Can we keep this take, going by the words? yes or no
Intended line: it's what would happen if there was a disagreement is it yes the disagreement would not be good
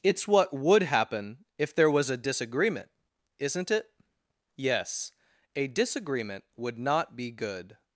no